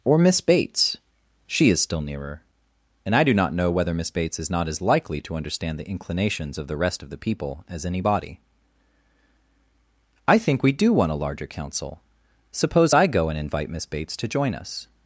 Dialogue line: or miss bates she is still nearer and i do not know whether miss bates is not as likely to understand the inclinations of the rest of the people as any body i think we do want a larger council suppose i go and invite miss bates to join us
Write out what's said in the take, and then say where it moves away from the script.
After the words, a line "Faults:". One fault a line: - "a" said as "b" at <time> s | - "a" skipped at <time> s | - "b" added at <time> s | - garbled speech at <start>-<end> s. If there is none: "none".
or miss bates she is still nearer and i do not know whether miss bates is not as likely to understand the inclinations of the rest of the people as any body i think we do want a larger council suppose i go and invite miss bates to join us
Faults:
none